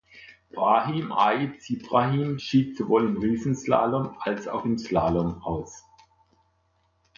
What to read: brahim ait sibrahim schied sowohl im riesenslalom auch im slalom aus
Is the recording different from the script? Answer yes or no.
yes